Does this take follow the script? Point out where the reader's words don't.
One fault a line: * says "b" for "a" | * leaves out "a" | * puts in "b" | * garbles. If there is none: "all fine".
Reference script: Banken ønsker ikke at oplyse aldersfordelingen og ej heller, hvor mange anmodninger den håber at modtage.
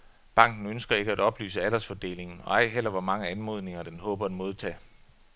all fine